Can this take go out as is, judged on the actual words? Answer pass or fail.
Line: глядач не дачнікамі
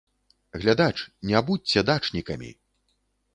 fail